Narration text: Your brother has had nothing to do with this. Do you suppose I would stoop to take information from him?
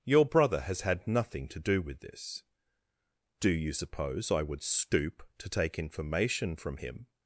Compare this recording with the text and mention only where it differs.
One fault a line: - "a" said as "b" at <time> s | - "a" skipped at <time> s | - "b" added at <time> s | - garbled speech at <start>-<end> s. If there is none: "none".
none